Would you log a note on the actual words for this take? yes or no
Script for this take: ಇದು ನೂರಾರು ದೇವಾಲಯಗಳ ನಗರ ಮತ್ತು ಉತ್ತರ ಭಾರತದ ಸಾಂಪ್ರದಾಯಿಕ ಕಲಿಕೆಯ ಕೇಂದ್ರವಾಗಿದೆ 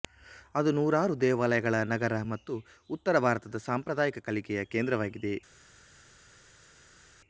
yes